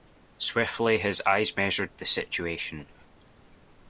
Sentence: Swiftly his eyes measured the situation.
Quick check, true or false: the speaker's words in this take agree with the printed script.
true